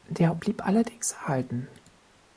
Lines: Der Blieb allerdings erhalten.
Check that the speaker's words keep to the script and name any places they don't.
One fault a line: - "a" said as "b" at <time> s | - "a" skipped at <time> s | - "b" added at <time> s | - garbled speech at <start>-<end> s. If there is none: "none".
none